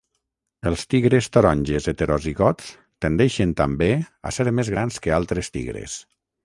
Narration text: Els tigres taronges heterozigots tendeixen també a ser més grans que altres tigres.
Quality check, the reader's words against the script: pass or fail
pass